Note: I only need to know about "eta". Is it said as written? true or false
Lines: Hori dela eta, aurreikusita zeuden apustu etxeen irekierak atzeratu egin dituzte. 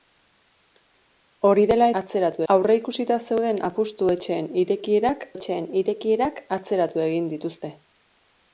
false